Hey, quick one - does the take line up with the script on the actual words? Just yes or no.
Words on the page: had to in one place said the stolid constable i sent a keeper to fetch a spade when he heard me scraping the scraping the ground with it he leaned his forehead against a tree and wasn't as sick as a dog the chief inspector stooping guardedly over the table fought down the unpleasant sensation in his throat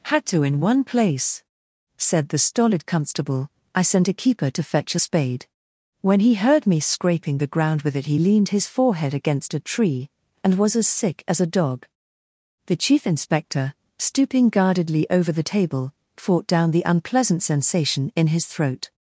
no